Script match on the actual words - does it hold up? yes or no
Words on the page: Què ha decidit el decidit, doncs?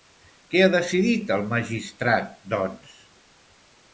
no